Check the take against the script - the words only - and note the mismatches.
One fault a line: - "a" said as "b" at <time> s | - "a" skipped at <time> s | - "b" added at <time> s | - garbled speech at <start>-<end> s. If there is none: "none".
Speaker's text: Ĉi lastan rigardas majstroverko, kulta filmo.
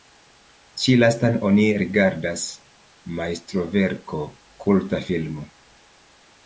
- "oni" added at 1.5 s